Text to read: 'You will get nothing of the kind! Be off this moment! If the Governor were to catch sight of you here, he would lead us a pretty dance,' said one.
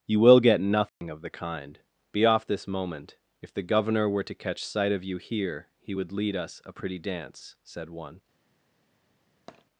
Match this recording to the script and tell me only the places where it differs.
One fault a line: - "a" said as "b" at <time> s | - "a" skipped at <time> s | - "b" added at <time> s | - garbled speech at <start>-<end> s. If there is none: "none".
none